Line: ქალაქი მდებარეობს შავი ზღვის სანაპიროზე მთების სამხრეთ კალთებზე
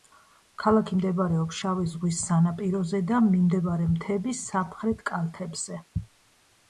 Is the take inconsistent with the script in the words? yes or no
yes